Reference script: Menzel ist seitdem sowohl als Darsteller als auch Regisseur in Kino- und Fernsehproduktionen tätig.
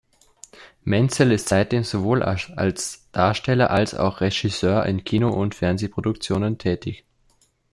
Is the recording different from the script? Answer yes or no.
no